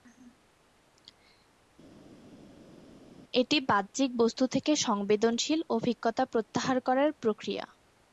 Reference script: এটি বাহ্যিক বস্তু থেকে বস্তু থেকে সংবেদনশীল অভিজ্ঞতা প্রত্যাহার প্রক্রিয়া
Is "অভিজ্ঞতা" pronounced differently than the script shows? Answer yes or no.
no